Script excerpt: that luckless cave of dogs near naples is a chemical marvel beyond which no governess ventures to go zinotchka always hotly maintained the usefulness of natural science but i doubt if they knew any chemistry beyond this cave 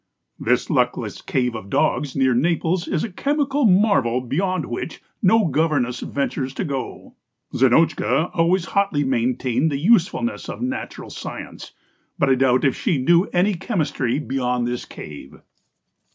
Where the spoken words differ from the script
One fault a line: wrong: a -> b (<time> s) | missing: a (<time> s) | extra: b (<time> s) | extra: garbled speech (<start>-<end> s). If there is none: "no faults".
wrong: that -> this (0.4 s)
wrong: they -> she (12.8 s)